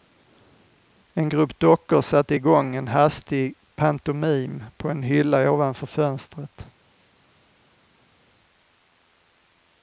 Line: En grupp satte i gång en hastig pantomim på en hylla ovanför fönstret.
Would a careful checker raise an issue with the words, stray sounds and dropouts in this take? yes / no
yes